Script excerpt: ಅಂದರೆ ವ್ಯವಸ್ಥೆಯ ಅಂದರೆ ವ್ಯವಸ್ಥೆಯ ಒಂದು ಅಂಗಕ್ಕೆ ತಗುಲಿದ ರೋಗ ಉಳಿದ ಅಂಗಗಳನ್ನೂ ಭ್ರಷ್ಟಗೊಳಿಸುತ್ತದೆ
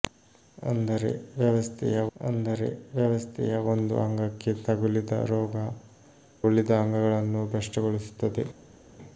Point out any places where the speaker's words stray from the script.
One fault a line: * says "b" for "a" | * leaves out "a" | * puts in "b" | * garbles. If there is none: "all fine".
all fine